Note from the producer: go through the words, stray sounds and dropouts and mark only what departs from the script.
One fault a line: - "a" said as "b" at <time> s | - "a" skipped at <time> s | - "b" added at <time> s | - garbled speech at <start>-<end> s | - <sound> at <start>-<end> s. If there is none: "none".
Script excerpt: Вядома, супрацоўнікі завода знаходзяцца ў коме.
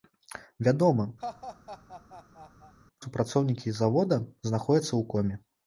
- laugh at 1.2-2.7 s